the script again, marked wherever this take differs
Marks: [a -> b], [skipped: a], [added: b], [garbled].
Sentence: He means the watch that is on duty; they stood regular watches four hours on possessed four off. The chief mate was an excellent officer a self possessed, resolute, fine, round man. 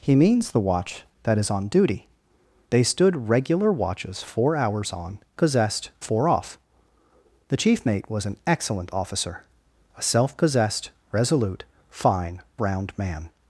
He means the watch that is on duty; they stood regular watches four hours on possessed four off. The chief mate was an excellent officer a self possessed, resolute, fine, round man.